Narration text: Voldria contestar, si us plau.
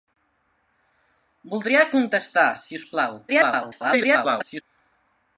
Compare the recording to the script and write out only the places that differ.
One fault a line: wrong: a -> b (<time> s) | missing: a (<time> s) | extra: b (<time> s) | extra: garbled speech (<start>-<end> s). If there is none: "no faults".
extra: garbled speech (3.3-4.6 s)